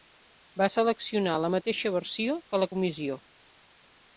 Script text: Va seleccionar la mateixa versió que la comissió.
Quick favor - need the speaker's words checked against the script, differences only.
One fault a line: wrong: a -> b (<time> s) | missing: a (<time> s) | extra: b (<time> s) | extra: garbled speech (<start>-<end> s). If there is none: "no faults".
no faults